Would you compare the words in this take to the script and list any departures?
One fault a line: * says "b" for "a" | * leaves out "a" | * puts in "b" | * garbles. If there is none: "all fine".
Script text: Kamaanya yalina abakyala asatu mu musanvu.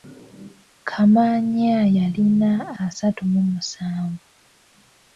* leaves out "abakyala"